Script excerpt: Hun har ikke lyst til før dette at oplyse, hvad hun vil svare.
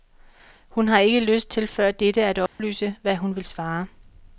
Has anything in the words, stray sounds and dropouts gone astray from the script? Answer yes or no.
yes